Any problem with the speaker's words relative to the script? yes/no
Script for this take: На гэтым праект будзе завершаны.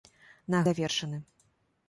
yes